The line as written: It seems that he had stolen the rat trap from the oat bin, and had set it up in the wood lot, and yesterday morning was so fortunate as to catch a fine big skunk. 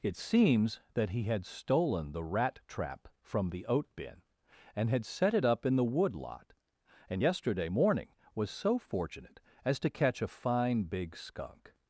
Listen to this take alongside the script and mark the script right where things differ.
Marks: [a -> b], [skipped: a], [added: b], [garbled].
It seems that he had stolen the rat trap from the oat bin, and had set it up in the wood lot, and yesterday morning was so fortunate as to catch a fine big skunk.